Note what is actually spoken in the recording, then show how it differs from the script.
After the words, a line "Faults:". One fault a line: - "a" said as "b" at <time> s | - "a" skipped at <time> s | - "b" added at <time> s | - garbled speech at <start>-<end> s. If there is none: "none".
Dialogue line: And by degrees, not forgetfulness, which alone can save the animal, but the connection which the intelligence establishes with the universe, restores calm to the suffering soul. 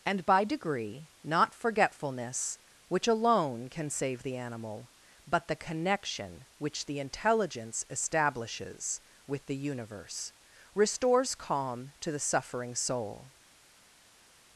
And by degree, not forgetfulness, which alone can save the animal, but the connection which the intelligence establishes with the universe, restores calm to the suffering soul.
Faults:
- "degrees" said as "degree" at 0.4 s